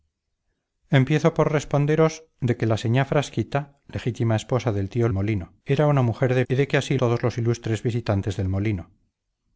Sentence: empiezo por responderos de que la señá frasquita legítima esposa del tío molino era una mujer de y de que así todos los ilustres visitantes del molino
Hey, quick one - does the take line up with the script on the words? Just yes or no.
yes